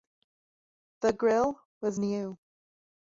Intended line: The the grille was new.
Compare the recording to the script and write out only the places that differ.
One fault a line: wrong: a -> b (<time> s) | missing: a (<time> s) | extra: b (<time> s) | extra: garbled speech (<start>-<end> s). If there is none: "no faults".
missing: the (1.1 s)